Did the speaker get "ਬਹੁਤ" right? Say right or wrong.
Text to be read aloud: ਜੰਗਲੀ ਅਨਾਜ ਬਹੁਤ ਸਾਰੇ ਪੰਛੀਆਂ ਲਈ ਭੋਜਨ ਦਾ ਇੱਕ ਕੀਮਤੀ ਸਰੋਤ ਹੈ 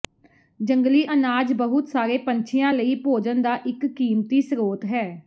right